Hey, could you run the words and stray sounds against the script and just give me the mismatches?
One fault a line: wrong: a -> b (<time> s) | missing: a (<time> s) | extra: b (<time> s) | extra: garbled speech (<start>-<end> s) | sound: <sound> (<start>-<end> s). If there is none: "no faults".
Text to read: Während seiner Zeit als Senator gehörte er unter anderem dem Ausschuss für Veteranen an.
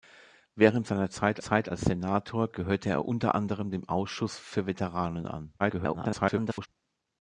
extra: Zeit (1.4 s)
extra: garbled speech (5.6-6.7 s)